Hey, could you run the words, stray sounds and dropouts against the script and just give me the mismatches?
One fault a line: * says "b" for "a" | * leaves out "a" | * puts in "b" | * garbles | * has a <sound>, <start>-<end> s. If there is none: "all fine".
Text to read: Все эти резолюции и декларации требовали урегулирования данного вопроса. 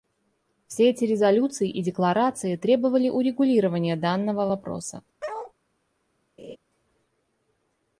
* has a bark, 5.2-5.5 s
* has a laugh, 6.4-6.6 s